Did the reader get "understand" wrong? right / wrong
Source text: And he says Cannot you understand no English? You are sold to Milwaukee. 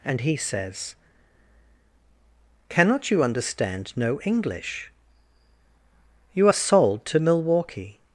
right